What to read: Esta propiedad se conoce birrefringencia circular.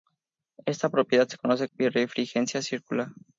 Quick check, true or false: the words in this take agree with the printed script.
true